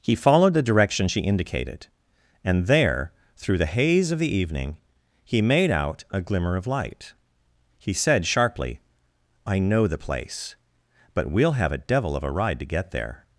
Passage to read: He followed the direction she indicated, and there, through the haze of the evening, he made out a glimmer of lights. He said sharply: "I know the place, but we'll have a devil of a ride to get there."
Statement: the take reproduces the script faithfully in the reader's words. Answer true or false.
false